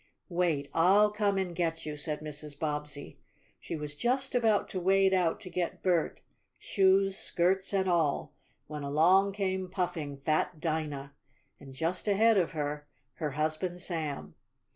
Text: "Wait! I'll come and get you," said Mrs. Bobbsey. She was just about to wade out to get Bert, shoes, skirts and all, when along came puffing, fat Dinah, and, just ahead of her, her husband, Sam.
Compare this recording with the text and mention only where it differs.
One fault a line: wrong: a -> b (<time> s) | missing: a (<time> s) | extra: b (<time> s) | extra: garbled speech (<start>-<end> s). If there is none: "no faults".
no faults